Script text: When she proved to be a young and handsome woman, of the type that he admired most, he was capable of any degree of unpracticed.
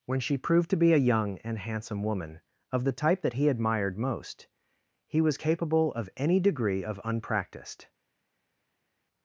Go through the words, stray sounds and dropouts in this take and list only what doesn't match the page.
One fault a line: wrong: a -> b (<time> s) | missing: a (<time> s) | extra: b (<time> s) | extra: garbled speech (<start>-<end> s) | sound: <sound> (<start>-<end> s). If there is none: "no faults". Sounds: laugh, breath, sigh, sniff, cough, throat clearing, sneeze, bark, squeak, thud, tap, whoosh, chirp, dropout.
no faults